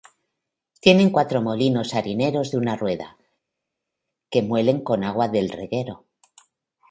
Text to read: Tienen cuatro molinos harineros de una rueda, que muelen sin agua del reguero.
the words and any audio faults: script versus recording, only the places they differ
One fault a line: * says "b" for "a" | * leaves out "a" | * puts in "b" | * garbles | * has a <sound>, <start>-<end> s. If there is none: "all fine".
* says "con" for "sin"